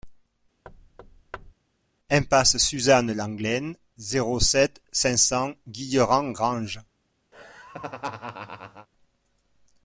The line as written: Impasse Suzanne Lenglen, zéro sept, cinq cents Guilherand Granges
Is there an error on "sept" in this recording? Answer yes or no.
no